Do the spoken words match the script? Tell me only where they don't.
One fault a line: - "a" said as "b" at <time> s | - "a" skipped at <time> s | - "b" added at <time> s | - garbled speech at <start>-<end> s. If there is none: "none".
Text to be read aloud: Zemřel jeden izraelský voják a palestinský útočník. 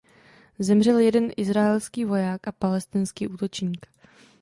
none